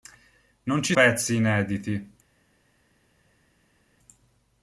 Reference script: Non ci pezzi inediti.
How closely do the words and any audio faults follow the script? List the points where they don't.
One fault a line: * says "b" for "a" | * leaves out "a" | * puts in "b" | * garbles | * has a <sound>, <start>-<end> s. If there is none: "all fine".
all fine